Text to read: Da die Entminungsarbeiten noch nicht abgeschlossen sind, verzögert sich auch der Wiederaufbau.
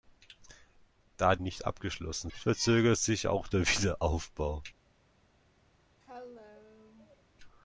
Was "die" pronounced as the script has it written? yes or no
no